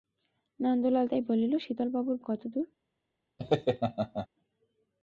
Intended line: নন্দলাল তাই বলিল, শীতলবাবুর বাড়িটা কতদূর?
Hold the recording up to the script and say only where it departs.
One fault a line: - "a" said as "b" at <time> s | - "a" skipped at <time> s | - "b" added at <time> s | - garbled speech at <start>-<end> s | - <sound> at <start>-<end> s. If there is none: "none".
- "বাড়িটা" skipped at 2.2 s
- laugh at 3.4-4.3 s